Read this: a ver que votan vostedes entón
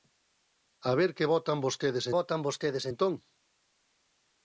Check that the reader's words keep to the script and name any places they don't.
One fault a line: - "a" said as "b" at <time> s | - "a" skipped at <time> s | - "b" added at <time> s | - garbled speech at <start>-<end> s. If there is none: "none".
- "votan vostedes" added at 2.2 s